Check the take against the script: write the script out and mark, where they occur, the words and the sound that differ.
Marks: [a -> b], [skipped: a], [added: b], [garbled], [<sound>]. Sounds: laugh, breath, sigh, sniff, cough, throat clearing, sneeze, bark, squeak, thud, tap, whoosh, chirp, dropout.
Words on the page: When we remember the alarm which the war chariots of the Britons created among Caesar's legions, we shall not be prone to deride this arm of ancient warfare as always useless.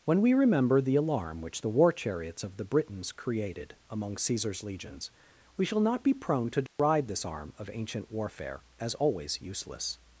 When we remember the alarm which the war chariots of the Britons created among Caesar's legions, we shall not be prone to deride [dropout] this arm of ancient warfare as always useless.